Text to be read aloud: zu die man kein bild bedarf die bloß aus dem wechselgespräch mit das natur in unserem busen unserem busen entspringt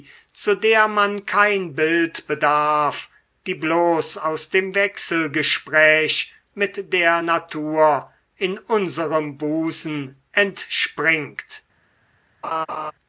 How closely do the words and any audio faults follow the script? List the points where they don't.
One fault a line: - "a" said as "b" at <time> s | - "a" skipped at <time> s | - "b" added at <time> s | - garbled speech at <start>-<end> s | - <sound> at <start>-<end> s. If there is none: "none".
- "die" said as "der" at 0.6 s
- "das" said as "der" at 6.9 s
- "unserem busen" skipped at 10.1 s
- laugh at 12.4-12.9 s